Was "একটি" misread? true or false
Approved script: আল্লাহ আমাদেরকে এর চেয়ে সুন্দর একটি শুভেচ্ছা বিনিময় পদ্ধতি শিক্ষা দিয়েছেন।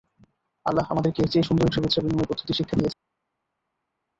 true